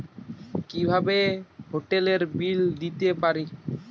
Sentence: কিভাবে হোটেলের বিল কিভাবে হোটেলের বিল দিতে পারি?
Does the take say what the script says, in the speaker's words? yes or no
no